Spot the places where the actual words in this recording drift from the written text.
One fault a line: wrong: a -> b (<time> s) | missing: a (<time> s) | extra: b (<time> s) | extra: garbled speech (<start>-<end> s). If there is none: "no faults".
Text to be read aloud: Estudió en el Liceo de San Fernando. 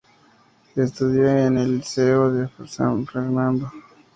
no faults